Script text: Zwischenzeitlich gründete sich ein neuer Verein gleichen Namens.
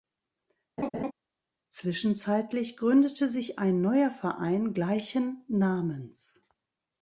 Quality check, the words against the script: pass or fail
pass